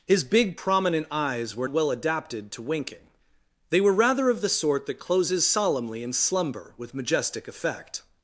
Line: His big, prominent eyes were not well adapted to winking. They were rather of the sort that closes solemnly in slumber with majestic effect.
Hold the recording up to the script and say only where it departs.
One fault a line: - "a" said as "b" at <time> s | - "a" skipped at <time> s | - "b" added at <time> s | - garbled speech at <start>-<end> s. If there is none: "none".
- "not" skipped at 1.7 s